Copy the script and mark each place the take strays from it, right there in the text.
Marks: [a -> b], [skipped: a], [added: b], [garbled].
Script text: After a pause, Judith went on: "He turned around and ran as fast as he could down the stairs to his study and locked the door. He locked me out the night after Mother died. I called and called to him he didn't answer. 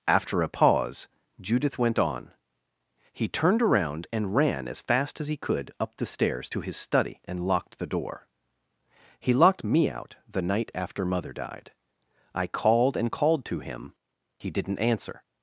After a pause, Judith went on: "He turned around and ran as fast as he could [down -> up] the stairs to his study and locked the door. He locked me out the night after Mother died. I called and called to him he didn't answer.